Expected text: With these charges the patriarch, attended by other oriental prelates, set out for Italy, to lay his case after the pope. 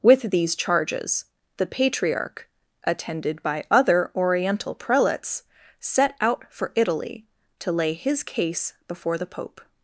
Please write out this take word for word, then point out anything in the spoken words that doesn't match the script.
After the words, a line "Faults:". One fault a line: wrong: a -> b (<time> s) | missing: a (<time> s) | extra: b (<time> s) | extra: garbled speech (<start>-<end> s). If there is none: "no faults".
With these charges the patriarch, attended by other oriental prelates, set out for Italy, to lay his case before the pope.
Faults:
wrong: after -> before (8.9 s)